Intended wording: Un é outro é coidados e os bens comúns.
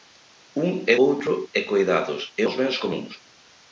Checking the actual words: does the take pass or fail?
pass